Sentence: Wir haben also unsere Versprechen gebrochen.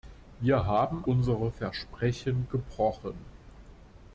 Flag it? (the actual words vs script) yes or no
yes